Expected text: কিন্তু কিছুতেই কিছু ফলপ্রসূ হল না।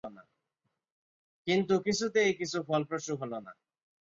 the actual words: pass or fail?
pass